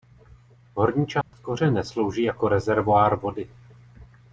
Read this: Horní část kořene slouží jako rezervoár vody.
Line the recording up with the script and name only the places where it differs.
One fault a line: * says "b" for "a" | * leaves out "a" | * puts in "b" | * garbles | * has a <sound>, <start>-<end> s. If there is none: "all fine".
* has a dropout, 1.2-1.3 s